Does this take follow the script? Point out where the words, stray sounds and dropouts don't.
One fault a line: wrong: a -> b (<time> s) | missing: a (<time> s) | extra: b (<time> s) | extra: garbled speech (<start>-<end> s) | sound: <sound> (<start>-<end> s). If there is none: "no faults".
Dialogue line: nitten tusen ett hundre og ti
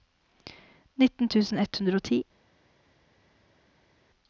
no faults